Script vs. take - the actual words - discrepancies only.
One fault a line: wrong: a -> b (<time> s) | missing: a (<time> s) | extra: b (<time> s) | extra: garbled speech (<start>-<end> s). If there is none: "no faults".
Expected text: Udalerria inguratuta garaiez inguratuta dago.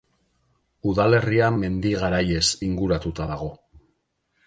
wrong: inguratuta -> mendi (1.6 s)